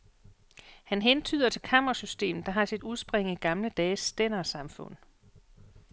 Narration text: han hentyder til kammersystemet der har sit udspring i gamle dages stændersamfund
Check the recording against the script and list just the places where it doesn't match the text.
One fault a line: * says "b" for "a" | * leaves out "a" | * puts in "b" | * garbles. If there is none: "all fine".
all fine